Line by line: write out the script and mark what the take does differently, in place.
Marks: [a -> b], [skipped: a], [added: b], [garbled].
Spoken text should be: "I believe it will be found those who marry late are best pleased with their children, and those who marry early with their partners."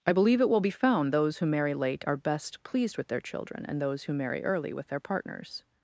"I believe it will be found those who marry late are best pleased with their children, and those who marry early with their partners."